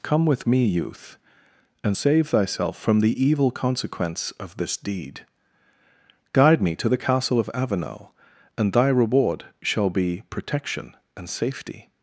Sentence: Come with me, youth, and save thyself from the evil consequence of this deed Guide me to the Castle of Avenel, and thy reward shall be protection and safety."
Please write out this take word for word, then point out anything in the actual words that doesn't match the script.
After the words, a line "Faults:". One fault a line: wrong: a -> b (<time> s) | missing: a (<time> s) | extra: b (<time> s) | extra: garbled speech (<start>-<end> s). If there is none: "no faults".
Come with me, youth, and save thyself from the evil consequence of this deed Guide me to the Castle of Avenel, and thy reward shall be protection and safety."
Faults:
no faults